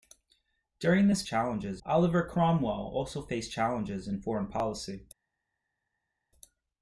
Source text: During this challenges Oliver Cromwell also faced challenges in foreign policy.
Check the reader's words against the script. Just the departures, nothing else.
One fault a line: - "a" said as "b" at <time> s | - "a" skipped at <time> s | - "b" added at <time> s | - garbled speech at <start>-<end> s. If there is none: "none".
none